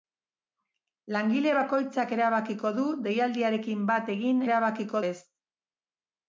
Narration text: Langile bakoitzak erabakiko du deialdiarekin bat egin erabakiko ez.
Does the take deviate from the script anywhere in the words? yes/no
no